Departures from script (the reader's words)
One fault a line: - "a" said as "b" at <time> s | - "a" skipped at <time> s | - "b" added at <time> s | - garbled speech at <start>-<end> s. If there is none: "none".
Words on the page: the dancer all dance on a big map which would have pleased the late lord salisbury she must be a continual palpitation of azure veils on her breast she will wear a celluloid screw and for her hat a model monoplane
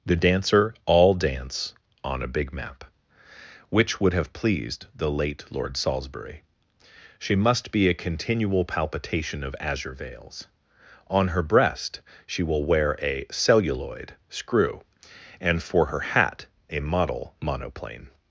none